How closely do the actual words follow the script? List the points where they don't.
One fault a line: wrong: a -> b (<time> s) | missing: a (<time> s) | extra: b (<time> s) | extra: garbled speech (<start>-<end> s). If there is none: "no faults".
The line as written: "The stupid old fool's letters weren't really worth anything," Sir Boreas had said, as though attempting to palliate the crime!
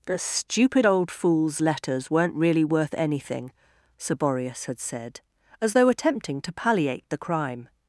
no faults